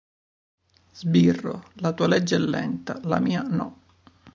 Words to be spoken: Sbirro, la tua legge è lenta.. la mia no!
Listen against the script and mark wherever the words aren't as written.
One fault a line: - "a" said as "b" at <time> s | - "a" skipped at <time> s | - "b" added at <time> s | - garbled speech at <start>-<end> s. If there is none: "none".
none